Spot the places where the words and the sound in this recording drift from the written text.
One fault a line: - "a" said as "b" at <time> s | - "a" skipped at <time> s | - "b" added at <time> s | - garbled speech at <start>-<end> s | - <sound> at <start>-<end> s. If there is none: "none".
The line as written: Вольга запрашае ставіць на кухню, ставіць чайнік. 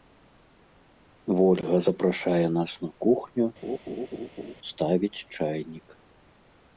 - "ставіць" said as "нас" at 2.6 s
- laugh at 3.6-4.5 s